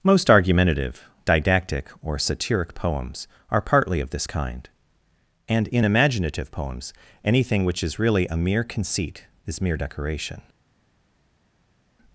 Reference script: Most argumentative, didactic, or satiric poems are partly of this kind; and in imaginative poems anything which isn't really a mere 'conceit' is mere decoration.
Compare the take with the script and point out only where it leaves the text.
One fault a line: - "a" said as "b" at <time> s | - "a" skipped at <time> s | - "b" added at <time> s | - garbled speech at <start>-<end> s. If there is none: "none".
- "isn't" said as "is" at 7.8 s